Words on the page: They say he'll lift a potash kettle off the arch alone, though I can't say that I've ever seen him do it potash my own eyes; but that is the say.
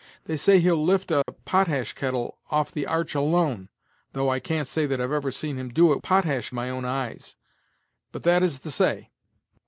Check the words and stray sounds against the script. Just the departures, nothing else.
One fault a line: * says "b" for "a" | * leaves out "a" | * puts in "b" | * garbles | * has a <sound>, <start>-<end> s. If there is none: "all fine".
* has a dropout, 1.2-1.3 s